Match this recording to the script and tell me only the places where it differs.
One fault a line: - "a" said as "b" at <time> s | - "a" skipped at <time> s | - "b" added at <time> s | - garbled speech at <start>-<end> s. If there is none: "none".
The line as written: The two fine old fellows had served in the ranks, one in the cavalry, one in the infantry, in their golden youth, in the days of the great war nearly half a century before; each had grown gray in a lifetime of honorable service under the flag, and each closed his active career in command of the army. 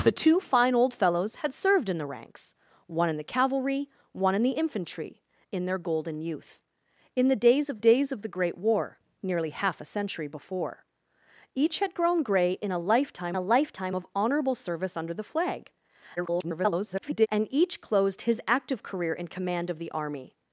- "days of" added at 7.8 s
- "a lifetime" added at 13.3 s
- garbled speech at 16.2-17.3 s